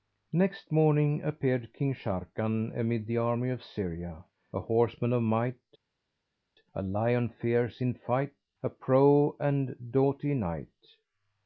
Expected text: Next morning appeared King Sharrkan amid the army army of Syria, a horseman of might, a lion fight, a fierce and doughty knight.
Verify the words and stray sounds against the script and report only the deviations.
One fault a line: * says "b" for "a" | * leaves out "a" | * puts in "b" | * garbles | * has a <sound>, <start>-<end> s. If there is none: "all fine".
* leaves out "army"
* puts in "fierce in"
* says "prow" for "fierce"